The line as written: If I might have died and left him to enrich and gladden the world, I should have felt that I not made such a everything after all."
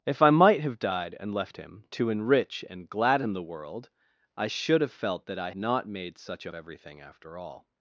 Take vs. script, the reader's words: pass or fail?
pass